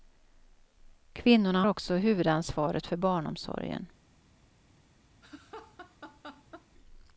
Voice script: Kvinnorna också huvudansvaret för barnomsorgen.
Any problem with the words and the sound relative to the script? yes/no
yes